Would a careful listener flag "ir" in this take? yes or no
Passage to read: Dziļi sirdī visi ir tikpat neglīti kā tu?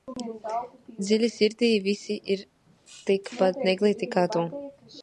no